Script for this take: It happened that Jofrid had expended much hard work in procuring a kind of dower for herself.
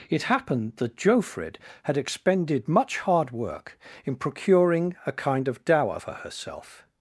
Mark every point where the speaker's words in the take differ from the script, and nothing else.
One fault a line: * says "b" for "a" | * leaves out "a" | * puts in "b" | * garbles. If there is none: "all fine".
all fine